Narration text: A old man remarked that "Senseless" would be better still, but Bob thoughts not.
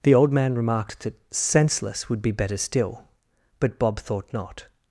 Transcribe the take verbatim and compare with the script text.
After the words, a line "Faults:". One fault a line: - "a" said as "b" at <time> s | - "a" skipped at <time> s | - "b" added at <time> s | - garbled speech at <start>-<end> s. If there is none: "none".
The old man remarked that "Senseless" would be better still, but Bob thought not.
Faults:
- "A" said as "The" at 0.0 s
- "thoughts" said as "thought" at 4.0 s